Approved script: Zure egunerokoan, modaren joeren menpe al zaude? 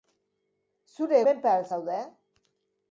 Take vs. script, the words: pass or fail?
fail